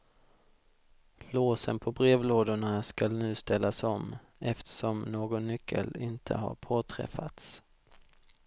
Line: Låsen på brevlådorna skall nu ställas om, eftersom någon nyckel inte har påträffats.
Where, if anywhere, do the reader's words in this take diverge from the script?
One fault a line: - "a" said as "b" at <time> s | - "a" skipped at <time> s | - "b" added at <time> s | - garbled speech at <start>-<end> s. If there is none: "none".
none